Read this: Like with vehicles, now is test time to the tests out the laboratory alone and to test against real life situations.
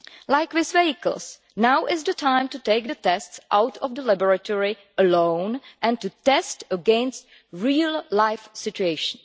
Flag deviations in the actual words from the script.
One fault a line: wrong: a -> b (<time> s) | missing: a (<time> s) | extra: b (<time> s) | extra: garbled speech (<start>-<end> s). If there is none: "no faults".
wrong: test -> the (2.0 s)
extra: take (2.6 s)
extra: of (3.8 s)